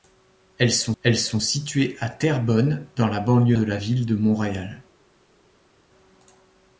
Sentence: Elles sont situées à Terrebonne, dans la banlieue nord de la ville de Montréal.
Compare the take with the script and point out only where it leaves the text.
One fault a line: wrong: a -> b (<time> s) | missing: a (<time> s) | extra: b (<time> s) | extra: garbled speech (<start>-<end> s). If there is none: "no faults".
extra: elles sont (1.0 s)
missing: nord (3.6 s)